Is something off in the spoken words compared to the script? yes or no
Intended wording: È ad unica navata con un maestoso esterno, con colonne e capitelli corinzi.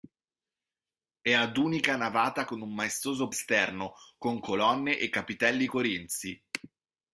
no